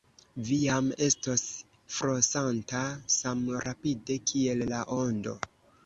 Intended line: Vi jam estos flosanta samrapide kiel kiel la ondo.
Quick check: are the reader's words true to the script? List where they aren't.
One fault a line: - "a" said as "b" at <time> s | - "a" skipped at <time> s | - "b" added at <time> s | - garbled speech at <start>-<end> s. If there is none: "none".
- "kiel" skipped at 4.6 s